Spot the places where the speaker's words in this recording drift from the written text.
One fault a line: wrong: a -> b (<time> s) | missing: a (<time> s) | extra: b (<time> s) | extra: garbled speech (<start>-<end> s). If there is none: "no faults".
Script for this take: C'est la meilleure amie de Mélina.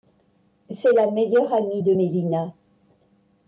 no faults